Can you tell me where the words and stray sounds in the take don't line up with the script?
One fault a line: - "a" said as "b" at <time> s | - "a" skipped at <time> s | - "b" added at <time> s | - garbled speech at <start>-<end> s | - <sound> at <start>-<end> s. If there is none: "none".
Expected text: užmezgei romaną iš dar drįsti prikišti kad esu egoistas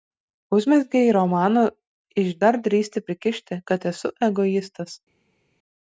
none